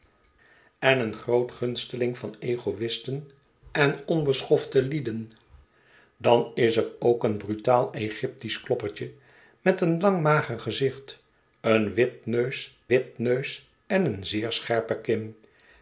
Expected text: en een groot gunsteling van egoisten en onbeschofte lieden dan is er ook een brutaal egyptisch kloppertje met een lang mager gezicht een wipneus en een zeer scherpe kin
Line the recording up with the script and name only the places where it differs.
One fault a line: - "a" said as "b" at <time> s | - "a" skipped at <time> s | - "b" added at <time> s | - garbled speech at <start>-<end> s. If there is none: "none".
- "wipneus" added at 12.9 s